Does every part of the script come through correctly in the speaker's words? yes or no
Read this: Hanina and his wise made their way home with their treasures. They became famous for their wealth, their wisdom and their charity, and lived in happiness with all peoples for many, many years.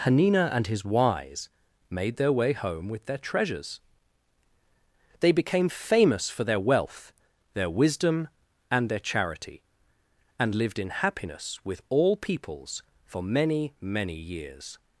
yes